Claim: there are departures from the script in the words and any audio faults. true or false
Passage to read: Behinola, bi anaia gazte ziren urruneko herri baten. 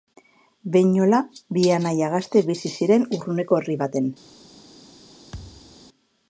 true